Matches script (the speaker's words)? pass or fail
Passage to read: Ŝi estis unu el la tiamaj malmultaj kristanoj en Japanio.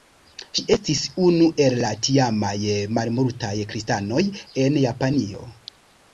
pass